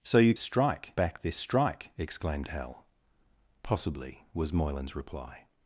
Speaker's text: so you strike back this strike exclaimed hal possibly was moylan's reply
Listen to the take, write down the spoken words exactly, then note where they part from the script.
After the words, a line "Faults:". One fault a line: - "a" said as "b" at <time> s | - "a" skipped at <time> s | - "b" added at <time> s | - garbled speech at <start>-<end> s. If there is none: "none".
so you strike back this strike exclaimed hal possibly was moylan's reply
Faults:
none